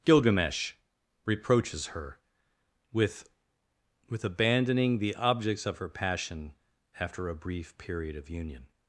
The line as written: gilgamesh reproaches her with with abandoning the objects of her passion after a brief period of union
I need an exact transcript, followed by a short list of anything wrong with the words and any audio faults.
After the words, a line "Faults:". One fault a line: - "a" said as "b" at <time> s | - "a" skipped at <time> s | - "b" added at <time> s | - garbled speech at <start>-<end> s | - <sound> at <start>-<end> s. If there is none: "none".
gilgamesh reproaches her with with abandoning the objects of her passion after a brief period of union
Faults:
none